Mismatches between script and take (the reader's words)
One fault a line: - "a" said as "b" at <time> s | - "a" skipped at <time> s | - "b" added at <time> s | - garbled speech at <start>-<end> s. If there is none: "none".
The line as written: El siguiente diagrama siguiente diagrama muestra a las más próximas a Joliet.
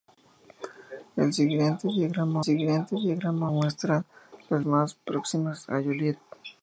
none